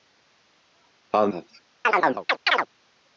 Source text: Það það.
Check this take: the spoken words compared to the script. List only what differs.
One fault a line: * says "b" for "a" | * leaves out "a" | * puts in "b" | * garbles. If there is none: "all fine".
all fine